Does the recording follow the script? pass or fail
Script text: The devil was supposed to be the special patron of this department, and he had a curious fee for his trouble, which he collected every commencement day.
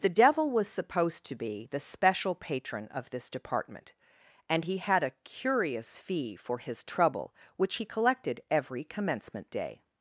pass